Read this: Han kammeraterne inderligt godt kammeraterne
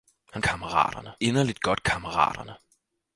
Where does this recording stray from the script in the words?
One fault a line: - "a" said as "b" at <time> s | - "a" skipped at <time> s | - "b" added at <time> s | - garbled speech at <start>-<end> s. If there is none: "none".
none